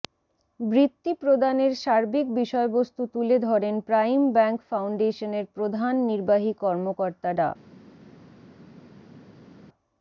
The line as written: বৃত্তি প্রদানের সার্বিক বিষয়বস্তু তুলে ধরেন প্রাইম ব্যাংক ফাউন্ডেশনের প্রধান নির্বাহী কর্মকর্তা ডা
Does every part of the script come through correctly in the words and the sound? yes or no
yes